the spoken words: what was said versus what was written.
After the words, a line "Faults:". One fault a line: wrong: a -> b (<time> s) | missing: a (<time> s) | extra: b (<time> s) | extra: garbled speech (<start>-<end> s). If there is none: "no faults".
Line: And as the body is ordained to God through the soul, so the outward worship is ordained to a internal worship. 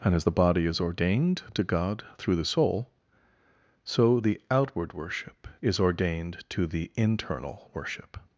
And as the body is ordained to God through the soul, so the outward worship is ordained to the internal worship.
Faults:
wrong: a -> the (6.7 s)